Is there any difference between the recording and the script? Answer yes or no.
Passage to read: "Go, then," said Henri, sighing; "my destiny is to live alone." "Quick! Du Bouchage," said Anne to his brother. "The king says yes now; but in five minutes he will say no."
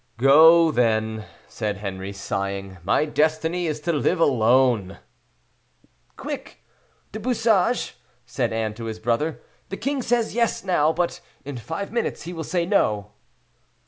no